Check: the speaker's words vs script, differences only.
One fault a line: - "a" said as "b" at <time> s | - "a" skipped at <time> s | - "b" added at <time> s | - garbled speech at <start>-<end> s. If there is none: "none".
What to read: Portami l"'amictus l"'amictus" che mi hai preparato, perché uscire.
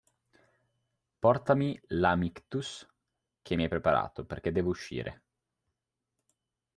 - "l"'amictus" skipped at 2.9 s
- "devo" added at 4.5 s